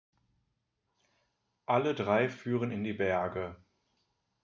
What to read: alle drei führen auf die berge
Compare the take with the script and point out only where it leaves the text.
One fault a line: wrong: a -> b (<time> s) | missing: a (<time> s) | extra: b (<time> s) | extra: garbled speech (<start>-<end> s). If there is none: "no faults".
wrong: auf -> in (2.7 s)